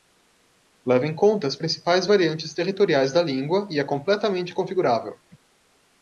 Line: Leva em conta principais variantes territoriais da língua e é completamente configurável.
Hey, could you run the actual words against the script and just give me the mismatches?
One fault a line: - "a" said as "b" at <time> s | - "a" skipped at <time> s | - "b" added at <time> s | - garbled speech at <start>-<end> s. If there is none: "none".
- "as" added at 1.4 s